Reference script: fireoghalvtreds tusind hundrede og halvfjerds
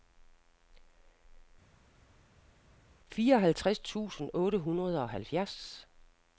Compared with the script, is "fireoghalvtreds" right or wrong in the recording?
right